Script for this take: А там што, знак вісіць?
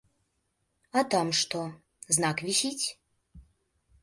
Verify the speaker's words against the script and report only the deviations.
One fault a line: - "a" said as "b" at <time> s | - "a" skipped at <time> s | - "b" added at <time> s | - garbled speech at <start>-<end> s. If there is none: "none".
none